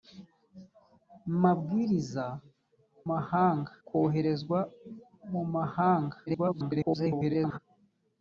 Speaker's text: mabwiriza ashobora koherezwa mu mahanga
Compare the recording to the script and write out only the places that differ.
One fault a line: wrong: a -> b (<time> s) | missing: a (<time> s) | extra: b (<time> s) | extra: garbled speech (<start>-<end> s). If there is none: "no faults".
wrong: ashobora -> mahanga (3.1 s)
extra: garbled speech (6.3-7.6 s)